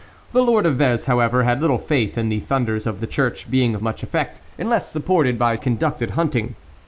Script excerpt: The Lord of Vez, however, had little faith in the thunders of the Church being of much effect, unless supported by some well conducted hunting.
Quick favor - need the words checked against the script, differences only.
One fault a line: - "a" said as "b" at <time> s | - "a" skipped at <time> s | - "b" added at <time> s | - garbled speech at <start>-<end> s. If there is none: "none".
- "some well" skipped at 5.6 s